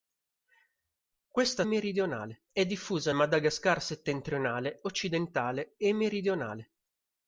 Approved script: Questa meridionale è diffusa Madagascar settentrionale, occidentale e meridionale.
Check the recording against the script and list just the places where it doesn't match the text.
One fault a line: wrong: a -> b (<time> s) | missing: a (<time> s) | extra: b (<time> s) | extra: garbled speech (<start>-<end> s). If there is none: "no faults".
no faults